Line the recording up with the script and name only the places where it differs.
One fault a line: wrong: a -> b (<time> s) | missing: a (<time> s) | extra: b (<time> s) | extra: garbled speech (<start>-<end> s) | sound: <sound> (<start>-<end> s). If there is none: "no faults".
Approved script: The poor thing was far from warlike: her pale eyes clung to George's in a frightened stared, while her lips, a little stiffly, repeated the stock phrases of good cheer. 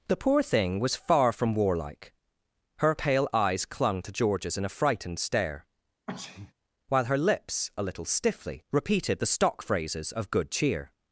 wrong: stared -> stare (5.2 s)
sound: sneeze (6.1-6.5 s)